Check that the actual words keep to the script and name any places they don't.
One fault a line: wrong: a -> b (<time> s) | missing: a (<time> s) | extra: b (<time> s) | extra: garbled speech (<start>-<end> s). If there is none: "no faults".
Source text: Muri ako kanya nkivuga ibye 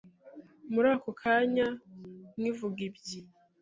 no faults